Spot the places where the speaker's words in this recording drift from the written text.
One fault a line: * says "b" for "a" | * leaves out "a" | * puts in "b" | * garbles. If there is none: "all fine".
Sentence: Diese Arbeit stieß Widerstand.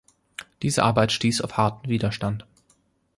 * puts in "auf harten"